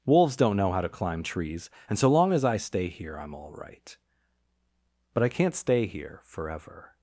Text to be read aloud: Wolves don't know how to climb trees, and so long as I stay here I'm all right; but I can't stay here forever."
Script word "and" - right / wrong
right